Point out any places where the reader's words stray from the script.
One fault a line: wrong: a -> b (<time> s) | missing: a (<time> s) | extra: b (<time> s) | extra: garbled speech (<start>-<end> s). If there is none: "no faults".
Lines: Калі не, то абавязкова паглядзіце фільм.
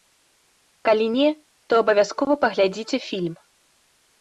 no faults